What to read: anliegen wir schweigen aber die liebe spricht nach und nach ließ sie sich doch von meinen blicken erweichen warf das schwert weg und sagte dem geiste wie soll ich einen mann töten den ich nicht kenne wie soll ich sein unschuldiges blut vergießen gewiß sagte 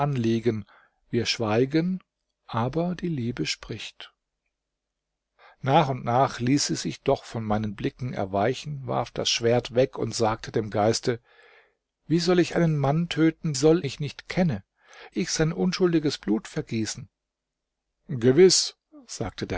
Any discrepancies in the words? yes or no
yes